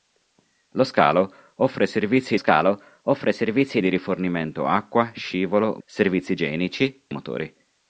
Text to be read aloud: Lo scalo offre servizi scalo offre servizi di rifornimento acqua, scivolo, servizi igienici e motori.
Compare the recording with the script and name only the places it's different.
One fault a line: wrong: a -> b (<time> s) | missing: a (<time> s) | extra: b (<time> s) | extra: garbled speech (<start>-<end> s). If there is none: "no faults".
no faults